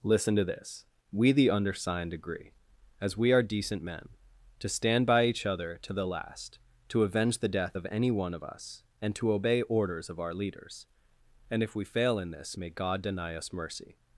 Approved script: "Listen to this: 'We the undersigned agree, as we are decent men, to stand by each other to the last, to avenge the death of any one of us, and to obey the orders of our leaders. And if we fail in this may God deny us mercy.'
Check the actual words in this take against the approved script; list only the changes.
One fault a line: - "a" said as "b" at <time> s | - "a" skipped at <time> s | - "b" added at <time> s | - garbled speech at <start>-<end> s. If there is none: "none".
- "the" skipped at 9.6 s